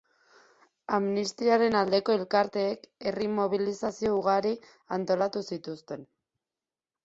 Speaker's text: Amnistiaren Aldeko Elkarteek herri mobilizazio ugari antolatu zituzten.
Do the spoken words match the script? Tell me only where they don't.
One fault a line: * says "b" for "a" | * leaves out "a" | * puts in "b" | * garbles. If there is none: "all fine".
all fine